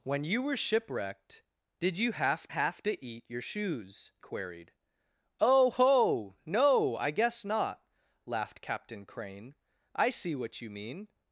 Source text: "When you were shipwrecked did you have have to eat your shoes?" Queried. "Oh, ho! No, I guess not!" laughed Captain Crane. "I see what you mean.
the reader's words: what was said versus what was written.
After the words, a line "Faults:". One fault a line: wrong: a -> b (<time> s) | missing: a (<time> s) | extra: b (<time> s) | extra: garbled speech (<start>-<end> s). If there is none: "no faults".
"When you were shipwrecked did you have have to eat your shoes?" Queried. "Oh, ho! No, I guess not!" laughed Captain Crane. "I see what you mean.
Faults:
no faults